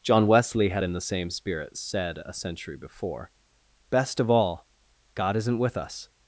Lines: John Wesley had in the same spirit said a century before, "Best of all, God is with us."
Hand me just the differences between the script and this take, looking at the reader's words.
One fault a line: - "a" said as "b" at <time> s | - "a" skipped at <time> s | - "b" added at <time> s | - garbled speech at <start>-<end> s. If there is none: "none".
- "is" said as "isn't" at 5.4 s